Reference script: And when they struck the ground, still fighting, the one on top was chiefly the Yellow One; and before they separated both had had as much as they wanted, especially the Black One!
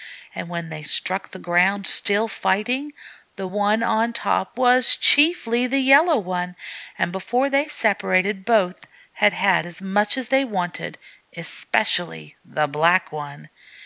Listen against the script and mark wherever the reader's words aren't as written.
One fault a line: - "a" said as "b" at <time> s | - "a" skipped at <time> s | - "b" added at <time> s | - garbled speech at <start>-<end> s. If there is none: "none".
none